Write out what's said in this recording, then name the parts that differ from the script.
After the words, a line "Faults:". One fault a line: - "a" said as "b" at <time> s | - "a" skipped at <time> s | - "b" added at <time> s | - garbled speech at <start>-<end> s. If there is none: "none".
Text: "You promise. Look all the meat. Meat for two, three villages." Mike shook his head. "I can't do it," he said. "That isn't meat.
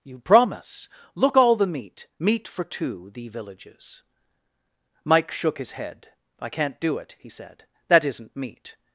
"You promise. Look all the meat. Meat for two, thee villages." Mike shook his head. "I can't do it," he said. "That isn't meat.
Faults:
- "three" said as "thee" at 3.1 s